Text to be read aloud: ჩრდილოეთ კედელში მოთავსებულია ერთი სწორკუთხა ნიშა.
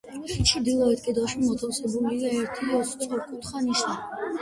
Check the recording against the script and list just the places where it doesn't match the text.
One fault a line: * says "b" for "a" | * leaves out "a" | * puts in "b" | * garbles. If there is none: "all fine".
all fine